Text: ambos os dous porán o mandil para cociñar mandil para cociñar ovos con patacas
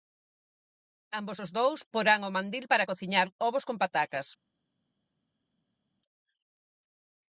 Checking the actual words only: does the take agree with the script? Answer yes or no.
no